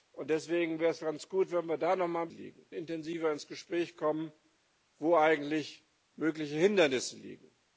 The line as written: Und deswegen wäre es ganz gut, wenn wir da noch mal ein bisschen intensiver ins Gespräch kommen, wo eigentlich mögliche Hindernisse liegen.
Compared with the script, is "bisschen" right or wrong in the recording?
wrong